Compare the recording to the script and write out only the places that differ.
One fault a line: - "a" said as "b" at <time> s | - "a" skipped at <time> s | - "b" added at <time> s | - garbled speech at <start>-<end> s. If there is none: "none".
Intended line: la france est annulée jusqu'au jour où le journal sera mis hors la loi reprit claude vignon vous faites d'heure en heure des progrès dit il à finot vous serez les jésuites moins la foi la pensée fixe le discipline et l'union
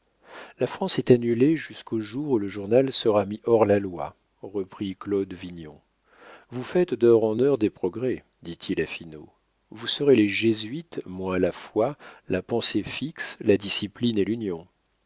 - "le" said as "la" at 13.4 s